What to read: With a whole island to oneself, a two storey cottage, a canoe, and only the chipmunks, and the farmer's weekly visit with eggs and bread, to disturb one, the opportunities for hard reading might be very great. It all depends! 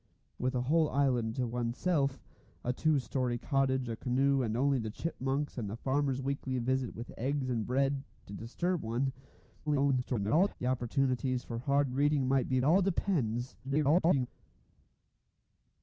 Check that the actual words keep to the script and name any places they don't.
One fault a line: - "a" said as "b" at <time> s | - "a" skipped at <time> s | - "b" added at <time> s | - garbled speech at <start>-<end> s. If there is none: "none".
- garbled speech at 9.7-10.5 s
- "very great It" skipped at 12.6 s
- garbled speech at 13.6-14.3 s